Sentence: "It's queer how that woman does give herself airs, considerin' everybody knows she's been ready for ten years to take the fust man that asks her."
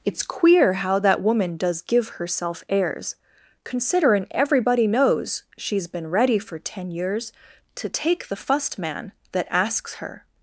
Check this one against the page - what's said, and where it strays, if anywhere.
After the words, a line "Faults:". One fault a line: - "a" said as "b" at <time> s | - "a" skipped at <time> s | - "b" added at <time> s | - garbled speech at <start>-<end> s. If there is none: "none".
"It's queer how that woman does give herself airs, considerin' everybody knows she's been ready for ten years to take the fust man that asks her."
Faults:
none